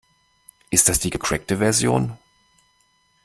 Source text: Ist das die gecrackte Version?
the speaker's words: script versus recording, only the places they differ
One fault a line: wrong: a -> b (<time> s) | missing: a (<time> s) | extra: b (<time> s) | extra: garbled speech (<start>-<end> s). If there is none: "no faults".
no faults